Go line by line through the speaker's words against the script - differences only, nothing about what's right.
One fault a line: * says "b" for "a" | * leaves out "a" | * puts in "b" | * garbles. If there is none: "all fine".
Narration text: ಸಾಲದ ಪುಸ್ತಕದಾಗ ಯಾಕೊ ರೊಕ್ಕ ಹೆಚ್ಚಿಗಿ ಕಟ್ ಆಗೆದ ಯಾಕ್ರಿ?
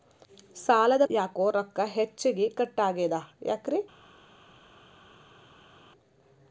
* leaves out "ಪುಸ್ತಕದಾಗ"